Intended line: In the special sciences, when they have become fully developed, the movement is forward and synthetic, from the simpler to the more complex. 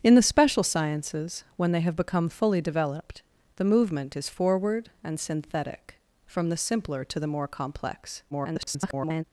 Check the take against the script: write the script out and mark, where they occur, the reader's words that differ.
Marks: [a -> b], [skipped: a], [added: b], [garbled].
In the special sciences, when they have become fully developed, the movement is forward and synthetic, from the simpler to the more complex. [garbled]